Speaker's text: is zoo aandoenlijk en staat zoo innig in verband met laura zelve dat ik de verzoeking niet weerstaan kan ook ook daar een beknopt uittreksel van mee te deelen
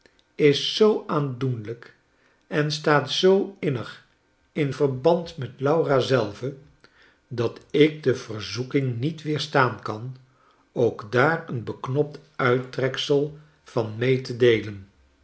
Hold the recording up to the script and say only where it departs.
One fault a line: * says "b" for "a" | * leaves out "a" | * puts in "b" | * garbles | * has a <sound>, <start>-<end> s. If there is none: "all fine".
* leaves out "ook"